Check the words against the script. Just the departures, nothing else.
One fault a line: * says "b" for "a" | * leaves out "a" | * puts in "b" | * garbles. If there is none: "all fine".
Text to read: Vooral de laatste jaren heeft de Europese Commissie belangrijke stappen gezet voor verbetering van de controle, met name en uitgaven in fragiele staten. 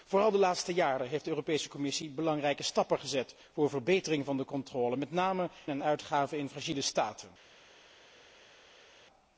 all fine